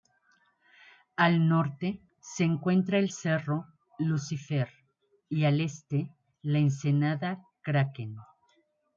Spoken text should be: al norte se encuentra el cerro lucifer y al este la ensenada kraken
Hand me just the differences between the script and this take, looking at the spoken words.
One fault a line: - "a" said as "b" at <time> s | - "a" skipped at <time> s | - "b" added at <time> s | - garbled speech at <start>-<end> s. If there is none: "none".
none